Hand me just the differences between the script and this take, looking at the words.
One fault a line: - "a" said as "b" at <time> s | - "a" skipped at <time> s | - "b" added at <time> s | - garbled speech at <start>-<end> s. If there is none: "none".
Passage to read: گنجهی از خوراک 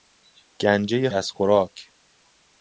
none